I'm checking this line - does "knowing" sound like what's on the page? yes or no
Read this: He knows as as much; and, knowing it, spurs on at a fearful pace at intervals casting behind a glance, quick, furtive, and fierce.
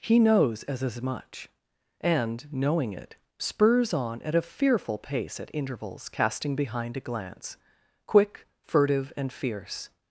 yes